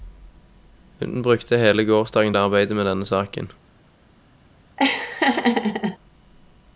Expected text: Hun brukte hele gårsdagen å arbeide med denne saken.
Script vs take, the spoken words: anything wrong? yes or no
no